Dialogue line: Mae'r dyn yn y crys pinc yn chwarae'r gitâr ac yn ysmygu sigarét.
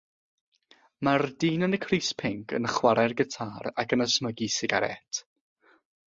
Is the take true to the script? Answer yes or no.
yes